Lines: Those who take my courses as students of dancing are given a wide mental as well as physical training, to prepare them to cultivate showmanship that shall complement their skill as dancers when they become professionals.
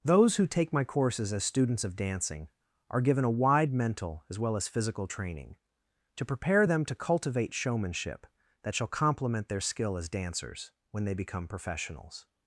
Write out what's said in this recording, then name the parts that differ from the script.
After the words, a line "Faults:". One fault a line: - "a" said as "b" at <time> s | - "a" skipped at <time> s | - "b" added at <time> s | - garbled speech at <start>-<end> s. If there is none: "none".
Those who take my courses as students of dancing are given a wide mental as well as physical training, to prepare them to cultivate showmanship that shall complement their skill as dancers when they become professionals.
Faults:
none